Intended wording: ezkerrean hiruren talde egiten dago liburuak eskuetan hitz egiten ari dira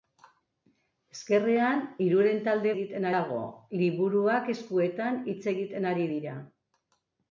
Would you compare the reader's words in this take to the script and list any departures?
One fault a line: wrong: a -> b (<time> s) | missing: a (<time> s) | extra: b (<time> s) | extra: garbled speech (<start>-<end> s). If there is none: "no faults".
no faults